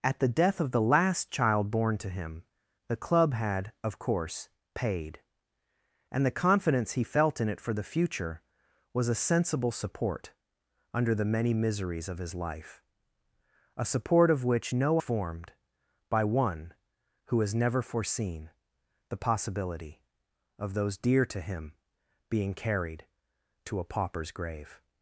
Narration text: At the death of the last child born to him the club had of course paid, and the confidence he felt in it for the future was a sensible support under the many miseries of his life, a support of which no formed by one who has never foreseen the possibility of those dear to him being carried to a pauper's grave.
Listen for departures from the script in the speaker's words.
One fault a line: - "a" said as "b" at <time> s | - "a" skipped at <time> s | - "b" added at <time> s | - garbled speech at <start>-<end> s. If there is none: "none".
none